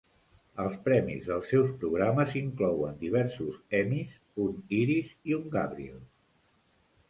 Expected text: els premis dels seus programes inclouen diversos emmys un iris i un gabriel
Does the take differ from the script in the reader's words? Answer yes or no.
no